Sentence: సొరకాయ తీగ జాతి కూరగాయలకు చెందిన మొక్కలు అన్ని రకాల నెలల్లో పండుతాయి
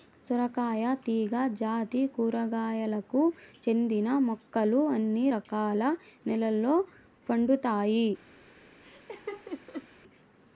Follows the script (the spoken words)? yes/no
yes